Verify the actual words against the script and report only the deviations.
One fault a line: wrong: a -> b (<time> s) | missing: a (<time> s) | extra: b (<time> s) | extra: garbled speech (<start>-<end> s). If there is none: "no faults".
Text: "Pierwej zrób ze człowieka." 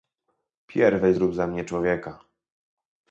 extra: mnie (1.5 s)